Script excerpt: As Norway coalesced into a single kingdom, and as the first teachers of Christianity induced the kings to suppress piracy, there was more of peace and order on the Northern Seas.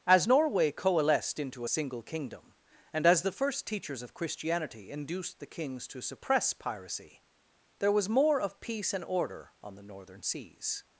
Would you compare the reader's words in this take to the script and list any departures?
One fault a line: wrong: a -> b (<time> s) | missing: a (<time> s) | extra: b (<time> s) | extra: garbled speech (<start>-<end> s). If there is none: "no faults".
no faults